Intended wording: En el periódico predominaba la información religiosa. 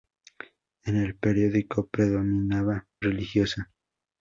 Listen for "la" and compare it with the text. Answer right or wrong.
wrong